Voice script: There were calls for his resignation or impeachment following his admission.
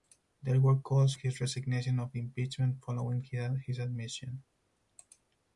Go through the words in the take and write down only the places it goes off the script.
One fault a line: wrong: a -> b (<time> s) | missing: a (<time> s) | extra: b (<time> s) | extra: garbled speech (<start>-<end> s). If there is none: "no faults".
missing: for (1.1 s)